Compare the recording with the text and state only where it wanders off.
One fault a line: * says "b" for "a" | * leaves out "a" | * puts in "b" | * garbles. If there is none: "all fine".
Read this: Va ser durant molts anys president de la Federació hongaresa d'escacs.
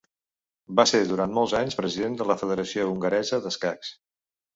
all fine